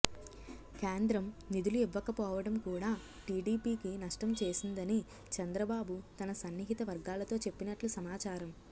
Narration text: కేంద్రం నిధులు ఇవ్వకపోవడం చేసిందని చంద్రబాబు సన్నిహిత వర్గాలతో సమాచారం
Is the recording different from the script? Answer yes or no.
yes